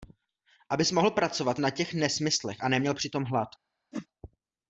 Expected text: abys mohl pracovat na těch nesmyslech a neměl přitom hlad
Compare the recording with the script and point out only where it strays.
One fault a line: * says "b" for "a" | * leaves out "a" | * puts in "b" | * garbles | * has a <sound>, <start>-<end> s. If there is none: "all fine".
* has a whoosh, 3.9-4.1 s